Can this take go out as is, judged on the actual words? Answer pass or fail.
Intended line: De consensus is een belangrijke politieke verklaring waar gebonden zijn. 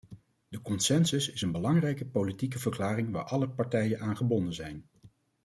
fail